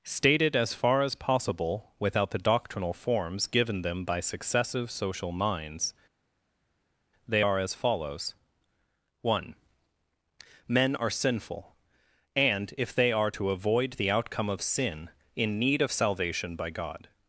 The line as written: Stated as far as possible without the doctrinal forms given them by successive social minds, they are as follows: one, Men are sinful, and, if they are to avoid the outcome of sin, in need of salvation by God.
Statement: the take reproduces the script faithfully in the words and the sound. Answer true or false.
true